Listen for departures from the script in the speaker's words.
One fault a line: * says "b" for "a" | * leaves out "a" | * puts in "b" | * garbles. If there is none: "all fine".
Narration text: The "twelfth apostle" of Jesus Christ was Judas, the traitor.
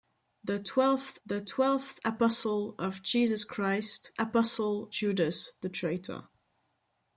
* puts in "the twelfth"
* says "apostle" for "was"